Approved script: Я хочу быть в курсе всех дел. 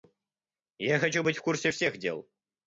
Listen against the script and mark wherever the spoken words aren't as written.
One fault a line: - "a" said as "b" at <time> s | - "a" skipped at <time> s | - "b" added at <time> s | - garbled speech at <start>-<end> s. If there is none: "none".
none